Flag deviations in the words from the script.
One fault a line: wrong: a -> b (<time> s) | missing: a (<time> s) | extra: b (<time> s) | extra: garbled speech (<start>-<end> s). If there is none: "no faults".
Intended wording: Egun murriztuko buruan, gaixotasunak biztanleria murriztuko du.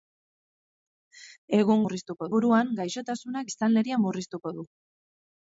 no faults